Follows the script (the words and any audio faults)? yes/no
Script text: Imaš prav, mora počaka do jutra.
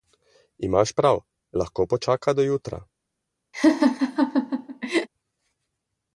no